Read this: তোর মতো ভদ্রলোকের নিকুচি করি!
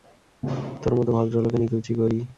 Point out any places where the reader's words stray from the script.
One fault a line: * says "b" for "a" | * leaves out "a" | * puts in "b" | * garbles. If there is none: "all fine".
all fine